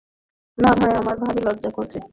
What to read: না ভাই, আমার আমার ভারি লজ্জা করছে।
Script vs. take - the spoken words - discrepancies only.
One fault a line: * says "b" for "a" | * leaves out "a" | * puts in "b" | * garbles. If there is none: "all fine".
* leaves out "আমার"